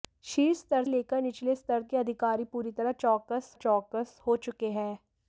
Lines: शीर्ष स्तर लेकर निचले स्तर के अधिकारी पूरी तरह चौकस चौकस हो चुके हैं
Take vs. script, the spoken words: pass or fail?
pass